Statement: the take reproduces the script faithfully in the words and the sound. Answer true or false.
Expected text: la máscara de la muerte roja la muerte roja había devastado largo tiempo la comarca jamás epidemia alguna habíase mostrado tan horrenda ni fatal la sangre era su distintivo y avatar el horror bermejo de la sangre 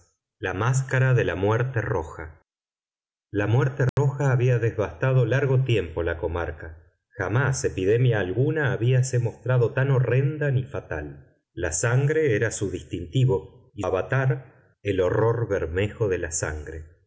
false